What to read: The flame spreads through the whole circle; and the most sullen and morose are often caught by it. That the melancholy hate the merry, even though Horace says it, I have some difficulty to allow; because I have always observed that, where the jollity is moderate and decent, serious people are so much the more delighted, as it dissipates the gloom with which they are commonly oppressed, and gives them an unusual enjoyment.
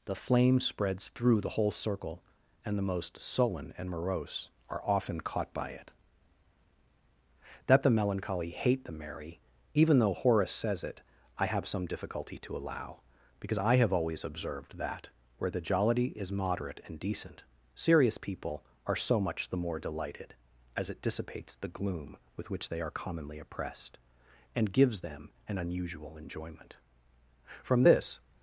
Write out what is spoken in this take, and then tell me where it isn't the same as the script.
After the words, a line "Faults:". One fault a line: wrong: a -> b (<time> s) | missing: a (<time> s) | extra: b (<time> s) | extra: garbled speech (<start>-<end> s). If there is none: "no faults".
The flame spreads through the whole circle; and the most sullen and morose are often caught by it. That the melancholy hate the merry, even though Horace says it, I have some difficulty to allow; because I have always observed that, where the jollity is moderate and decent, serious people are so much the more delighted, as it dissipates the gloom with which they are commonly oppressed, and gives them an unusual enjoyment. From this
Faults:
extra: From this (27.6 s)